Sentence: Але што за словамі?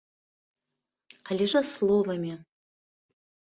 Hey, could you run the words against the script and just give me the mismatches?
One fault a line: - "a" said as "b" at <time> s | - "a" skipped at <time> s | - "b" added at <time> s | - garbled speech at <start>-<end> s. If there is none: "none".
- "што" skipped at 1.4 s